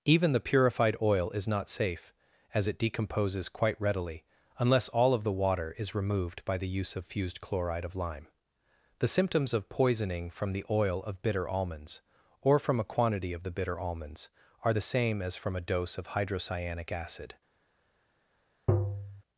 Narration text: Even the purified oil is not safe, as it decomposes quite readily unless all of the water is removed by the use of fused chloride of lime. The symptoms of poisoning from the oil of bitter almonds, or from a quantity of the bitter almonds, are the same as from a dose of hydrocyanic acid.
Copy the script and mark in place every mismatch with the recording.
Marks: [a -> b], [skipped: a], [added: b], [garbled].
Even the purified oil is not safe, as it decomposes quite readily unless all of the water is removed by the use of fused chloride of lime. The symptoms of poisoning from the oil of bitter almonds, or from a quantity of the bitter almonds, are the same as from a dose of hydrocyanic acid.